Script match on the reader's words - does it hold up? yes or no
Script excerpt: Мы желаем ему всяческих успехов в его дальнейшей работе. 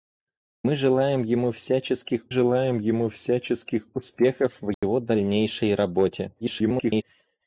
no